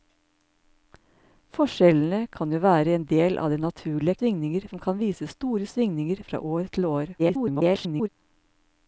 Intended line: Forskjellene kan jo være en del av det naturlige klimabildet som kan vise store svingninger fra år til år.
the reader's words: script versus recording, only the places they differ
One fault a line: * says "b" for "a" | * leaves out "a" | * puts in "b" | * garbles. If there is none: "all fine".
* says "svingninger" for "klimabildet"
* garbles